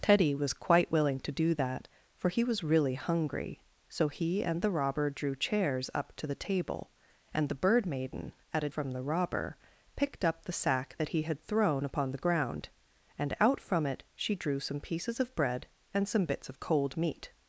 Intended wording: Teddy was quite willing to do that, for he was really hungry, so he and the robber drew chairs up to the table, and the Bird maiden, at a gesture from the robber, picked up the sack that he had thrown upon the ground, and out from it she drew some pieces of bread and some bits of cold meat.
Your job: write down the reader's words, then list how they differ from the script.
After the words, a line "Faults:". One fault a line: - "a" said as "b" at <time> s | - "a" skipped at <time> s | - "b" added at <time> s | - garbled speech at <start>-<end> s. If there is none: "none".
Teddy was quite willing to do that, for he was really hungry, so he and the robber drew chairs up to the table, and the Bird maiden, at a from the robber, picked up the sack that he had thrown upon the ground, and out from it she drew some pieces of bread and some bits of cold meat.
Faults:
- "gesture" skipped at 8.7 s